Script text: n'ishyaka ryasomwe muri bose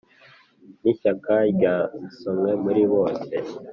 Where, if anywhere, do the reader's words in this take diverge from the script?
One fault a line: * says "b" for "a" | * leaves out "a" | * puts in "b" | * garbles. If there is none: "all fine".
all fine